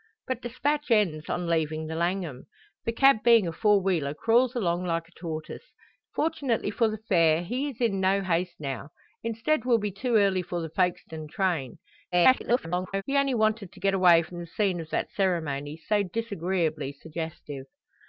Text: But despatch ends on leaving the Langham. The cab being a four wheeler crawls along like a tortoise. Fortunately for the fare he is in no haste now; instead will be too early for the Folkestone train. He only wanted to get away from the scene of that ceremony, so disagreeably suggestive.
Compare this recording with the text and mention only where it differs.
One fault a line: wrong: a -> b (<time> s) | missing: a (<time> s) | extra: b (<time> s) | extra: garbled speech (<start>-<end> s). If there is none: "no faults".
extra: garbled speech (12.1-13.0 s)